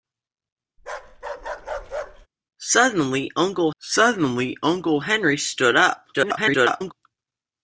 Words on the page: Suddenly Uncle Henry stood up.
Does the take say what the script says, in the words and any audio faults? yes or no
no